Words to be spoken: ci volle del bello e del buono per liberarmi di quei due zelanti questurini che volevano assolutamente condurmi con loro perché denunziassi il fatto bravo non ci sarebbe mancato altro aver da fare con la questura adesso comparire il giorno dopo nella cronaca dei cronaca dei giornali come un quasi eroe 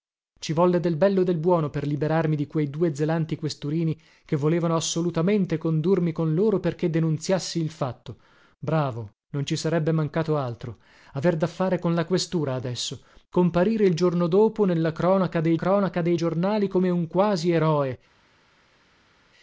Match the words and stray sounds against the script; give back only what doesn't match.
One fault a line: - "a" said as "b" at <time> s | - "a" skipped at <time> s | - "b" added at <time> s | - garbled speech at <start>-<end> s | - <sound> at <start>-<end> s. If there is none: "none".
none